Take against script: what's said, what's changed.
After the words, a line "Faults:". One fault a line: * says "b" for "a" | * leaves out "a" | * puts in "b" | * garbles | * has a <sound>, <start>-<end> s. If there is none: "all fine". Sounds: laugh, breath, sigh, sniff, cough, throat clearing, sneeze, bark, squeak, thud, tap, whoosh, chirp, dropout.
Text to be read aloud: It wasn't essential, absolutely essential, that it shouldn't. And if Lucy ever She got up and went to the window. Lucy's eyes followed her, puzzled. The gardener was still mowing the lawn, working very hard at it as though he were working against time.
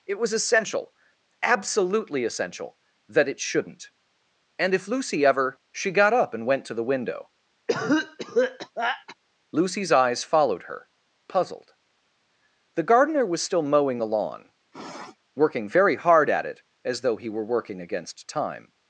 It was essential, absolutely essential, that it shouldn't. And if Lucy ever She got up and went to the window. Lucy's eyes followed her, puzzled. The gardener was still mowing the lawn, working very hard at it as though he were working against time.
Faults:
* says "was" for "wasn't"
* has a cough, 7.7-9.2 s
* has a sniff, 14.7-15.2 s